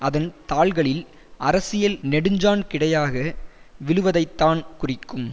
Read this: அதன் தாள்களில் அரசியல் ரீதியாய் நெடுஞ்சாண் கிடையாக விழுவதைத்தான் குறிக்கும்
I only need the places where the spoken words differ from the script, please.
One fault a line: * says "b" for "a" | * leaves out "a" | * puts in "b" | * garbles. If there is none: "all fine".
* leaves out "ரீதியாய்"